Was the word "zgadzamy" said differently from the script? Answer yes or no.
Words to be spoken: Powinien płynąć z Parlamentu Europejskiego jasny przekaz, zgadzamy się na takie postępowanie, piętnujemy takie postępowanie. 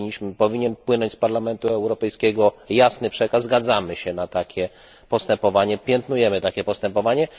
no